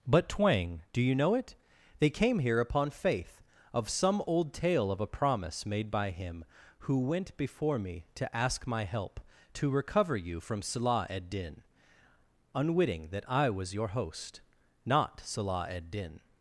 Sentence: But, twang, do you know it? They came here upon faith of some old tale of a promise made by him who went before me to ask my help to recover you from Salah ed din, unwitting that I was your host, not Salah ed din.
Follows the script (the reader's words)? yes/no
yes